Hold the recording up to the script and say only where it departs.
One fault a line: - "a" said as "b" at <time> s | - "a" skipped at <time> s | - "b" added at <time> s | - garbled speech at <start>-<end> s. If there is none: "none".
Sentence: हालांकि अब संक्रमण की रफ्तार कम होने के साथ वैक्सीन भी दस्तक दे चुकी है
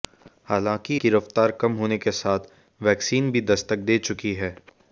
- "अब संक्रमण" skipped at 1.0 s